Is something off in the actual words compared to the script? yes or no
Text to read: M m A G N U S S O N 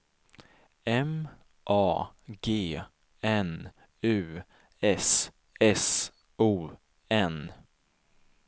yes